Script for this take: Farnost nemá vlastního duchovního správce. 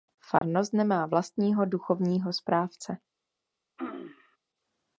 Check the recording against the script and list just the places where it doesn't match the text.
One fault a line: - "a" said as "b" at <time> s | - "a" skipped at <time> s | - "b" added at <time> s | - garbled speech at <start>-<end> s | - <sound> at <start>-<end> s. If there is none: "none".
- dropout at 0.4-0.4 s
- throat clearing at 3.8-4.4 s